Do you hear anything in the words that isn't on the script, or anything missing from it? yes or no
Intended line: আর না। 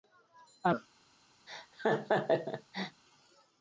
no